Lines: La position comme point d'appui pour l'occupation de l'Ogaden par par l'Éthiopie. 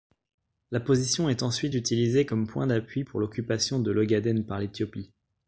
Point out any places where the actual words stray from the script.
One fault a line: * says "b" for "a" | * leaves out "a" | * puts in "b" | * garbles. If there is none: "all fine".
* puts in "est ensuite utilisée"
* leaves out "par"